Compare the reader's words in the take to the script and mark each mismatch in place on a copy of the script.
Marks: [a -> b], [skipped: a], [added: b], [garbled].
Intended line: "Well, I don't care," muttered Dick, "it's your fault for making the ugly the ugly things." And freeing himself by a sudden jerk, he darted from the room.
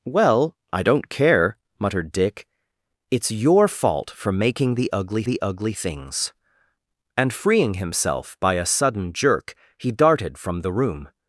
"Well, I don't care," muttered Dick, "it's your fault for making the ugly the ugly things." And freeing himself by a sudden jerk, he darted from the room.